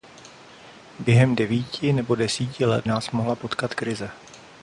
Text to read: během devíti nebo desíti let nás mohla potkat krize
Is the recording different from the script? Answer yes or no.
no